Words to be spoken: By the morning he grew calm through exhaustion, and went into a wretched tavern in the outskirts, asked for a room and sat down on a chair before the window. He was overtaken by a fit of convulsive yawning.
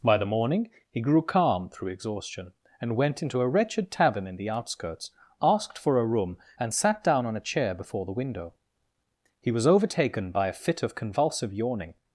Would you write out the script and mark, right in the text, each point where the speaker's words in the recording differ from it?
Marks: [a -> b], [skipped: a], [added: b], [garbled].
By the morning he grew calm through exhaustion, and went into a wretched tavern in the outskirts, asked for a room and sat down on a chair before the window. He was overtaken by a fit of convulsive yawning.